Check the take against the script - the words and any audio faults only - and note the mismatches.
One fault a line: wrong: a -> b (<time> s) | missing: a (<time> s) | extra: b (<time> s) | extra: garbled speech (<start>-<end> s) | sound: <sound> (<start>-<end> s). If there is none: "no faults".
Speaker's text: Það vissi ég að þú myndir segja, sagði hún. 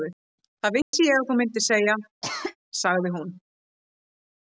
sound: dropout (0.8-0.9 s)
sound: cough (2.2-2.6 s)